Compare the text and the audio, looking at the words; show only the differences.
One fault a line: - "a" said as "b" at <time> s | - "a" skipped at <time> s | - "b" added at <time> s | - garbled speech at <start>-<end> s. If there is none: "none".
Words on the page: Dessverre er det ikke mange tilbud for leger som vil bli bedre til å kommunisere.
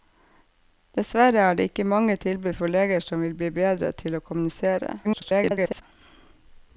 - garbled speech at 5.0-5.8 s